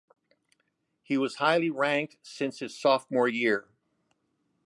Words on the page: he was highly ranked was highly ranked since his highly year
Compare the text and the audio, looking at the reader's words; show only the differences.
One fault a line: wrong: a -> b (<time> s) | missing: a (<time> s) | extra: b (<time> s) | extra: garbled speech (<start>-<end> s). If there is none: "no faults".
missing: was highly ranked (2.2 s)
wrong: highly -> sophomore (2.8 s)